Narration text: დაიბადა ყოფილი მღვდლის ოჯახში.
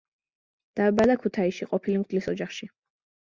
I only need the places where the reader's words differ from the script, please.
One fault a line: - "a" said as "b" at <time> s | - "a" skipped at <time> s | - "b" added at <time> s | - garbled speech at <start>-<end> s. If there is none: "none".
- "ქუთაისში" added at 1.2 s